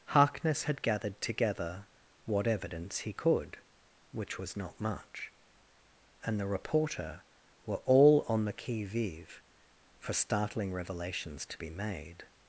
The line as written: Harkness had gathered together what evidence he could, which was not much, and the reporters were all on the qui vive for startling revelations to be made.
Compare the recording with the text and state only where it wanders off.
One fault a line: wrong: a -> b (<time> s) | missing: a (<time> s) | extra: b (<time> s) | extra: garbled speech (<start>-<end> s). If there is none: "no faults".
wrong: reporters -> reporter (6.5 s)